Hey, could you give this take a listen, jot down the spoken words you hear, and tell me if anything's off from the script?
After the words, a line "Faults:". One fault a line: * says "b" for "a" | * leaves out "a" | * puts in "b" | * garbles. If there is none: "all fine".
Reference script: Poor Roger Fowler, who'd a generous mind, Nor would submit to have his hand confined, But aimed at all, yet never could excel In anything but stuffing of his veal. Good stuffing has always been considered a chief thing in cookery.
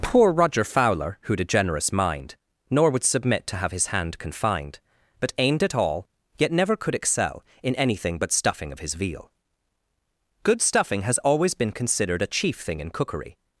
Poor Roger Fowler, who'd a generous mind, Nor would submit to have his hand confined, But aimed at all, yet never could excel In anything but stuffing of his veal. Good stuffing has always been considered a chief thing in cookery.
Faults:
all fine